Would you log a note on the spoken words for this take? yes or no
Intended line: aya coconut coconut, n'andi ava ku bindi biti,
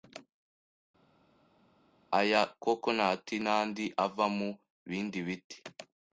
yes